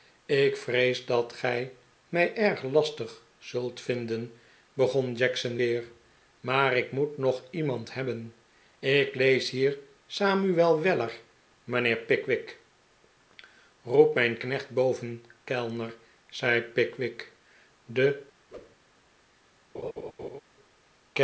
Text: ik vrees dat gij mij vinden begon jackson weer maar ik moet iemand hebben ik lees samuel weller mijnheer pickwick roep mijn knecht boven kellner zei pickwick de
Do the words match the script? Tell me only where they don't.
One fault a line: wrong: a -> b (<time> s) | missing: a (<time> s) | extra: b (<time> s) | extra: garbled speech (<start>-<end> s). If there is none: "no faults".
extra: erg lastig zult (2.4 s)
extra: nog (7.2 s)
extra: hier (9.5 s)